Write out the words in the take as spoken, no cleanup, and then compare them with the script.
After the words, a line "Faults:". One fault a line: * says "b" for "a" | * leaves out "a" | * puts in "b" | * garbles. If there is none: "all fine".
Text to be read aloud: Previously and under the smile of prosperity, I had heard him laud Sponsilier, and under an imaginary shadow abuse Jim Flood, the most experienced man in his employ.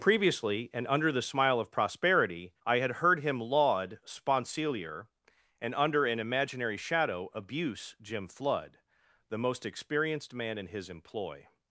Previously and under the smile of prosperity, I had heard him laud Sponsilier, and under an imaginary shadow abuse Jim Flood, the most experienced man in his employ.
Faults:
all fine